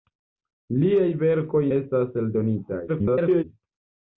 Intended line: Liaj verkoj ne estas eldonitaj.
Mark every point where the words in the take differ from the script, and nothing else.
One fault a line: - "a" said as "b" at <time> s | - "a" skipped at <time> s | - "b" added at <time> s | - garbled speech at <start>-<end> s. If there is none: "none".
- "ne" skipped at 1.6 s
- garbled speech at 2.9-3.4 s